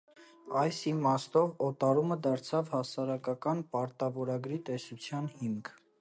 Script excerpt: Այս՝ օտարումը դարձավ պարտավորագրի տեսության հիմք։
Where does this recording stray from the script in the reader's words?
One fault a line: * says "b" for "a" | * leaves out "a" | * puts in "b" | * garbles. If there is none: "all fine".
* puts in "իմաստով"
* puts in "հասարակական"